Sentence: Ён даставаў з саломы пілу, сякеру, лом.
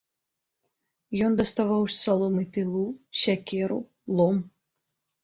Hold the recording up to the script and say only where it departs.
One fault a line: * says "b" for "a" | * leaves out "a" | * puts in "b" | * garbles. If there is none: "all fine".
all fine